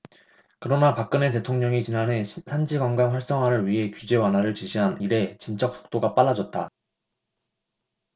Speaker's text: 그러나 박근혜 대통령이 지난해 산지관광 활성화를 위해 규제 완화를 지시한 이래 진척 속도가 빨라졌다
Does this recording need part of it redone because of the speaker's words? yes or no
no